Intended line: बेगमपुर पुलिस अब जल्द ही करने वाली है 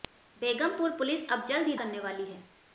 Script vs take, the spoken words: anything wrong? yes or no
no